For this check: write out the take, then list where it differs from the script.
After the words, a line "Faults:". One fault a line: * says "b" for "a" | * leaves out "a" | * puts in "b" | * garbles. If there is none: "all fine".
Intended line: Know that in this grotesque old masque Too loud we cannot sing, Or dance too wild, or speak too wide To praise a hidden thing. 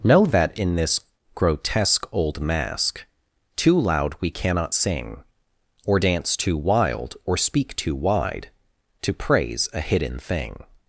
Know that in this grotesque old masque Too loud we cannot sing, Or dance too wild, or speak too wide To praise a hidden thing.
Faults:
all fine